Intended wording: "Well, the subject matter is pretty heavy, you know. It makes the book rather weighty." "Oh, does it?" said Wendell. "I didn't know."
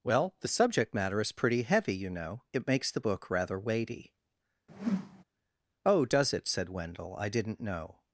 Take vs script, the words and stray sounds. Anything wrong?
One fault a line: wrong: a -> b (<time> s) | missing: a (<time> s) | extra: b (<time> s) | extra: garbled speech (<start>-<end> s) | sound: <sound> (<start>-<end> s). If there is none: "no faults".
sound: whoosh (4.7-5.2 s)